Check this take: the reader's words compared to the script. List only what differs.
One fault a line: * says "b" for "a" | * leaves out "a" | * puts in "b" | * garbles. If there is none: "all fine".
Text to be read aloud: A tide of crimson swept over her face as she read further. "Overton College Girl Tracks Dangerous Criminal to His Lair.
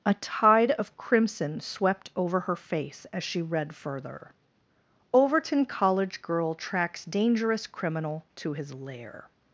all fine